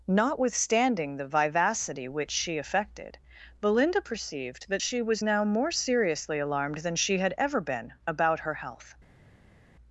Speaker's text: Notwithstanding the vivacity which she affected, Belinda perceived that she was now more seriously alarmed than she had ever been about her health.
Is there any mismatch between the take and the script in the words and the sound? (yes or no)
no